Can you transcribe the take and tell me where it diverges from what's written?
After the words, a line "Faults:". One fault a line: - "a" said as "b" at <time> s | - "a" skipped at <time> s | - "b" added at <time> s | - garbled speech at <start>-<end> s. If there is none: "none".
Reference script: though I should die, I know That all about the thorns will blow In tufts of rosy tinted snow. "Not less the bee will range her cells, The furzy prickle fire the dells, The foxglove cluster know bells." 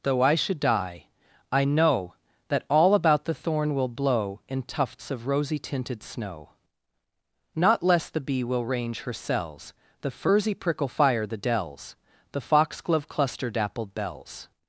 though I should die, I know That all about the thorn will blow In tufts of rosy tinted snow. "Not less the bee will range her cells, The furzy prickle fire the dells, The foxglove cluster dappled bells."
Faults:
- "thorns" said as "thorn" at 3.3 s
- "know" said as "dappled" at 13.5 s